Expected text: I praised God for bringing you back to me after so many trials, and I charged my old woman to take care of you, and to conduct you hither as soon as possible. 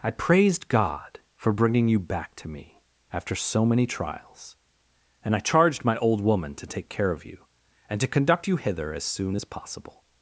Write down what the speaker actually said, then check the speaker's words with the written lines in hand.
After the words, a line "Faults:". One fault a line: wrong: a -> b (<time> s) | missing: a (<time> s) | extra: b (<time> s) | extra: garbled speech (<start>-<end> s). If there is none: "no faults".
I praised God for bringing you back to me after so many trials, and I charged my old woman to take care of you, and to conduct you hither as soon as possible.
Faults:
no faults